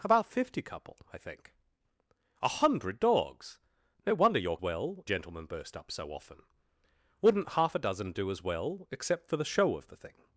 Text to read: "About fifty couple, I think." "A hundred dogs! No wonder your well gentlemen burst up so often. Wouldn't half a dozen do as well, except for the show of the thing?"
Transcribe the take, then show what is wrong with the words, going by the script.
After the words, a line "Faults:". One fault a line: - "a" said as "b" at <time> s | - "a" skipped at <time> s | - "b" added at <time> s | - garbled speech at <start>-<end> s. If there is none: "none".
"About fifty couple, I think." "A hundred dogs! No wonder your well gentlemen burst up so often. Wouldn't half a dozen do as well, except for the show of the thing?"
Faults:
none